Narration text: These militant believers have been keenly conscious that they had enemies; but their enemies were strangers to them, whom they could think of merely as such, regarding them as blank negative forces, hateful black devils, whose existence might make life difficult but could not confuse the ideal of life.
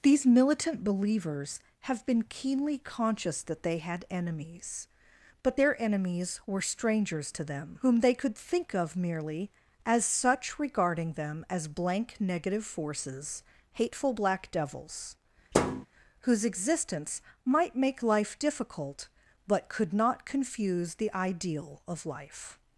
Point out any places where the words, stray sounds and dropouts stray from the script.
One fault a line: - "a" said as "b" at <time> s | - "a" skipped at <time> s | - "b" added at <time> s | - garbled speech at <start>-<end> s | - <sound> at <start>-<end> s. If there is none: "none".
- thud at 15.5-15.9 s